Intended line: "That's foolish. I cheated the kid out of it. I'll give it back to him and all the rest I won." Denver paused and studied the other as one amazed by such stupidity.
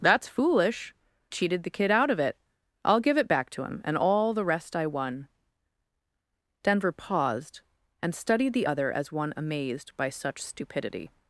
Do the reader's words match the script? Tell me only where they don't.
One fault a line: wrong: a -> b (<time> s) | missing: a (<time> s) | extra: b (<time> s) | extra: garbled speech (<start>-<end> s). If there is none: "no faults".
missing: I (0.9 s)